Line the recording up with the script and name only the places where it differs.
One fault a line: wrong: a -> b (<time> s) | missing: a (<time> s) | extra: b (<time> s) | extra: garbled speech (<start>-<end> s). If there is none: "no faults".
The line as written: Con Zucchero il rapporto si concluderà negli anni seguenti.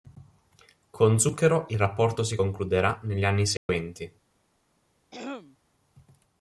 no faults